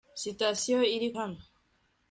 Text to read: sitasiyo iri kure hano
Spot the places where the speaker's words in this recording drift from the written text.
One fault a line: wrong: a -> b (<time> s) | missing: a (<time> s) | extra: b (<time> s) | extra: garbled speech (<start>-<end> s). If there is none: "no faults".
missing: kure (1.1 s)